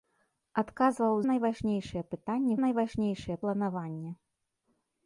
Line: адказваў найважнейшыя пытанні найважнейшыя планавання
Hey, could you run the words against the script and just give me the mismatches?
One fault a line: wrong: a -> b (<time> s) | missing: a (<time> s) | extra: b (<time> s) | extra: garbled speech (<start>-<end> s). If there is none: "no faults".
no faults